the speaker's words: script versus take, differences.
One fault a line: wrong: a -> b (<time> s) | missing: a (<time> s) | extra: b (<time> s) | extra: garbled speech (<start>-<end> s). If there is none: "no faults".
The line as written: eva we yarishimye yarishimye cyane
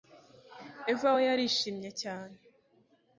missing: yarishimye (1.9 s)